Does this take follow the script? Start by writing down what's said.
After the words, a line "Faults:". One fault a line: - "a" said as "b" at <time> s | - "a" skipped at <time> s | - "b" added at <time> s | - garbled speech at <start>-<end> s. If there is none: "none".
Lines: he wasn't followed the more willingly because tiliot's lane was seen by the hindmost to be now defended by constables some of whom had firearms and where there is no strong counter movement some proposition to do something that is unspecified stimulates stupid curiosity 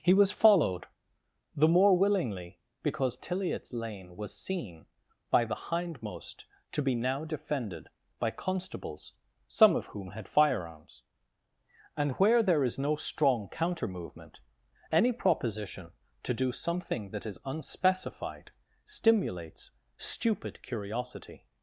he was followed the more willingly because tiliot's lane was seen by the hindmost to be now defended by constables some of whom had firearms and where there is no strong counter movement any proposition to do something that is unspecified stimulates stupid curiosity
Faults:
- "wasn't" said as "was" at 0.1 s
- "some" said as "any" at 14.9 s